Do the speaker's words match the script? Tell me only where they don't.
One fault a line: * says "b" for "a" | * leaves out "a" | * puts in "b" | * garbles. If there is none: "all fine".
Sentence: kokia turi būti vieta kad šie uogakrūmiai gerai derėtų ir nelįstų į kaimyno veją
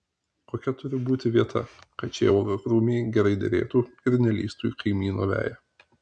all fine